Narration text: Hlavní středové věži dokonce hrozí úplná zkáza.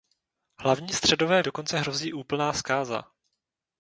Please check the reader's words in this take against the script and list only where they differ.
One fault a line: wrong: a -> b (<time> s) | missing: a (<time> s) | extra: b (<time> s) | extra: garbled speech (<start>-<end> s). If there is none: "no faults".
missing: věži (1.4 s)